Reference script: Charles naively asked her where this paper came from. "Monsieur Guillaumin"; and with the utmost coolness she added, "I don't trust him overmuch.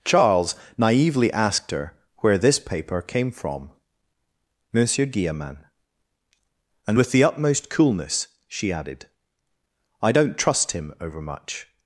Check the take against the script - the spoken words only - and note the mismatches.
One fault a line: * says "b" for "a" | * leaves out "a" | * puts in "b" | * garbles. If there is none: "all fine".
all fine